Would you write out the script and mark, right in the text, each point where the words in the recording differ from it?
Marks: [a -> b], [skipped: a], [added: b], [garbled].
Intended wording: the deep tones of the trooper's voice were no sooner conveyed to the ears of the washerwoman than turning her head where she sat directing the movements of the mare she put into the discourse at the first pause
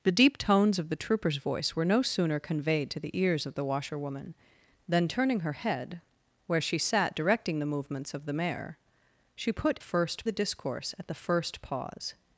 the deep tones of the trooper's voice were no sooner conveyed to the ears of the washerwoman than turning her head where she sat directing the movements of the mare she put [into -> first] the discourse at the first pause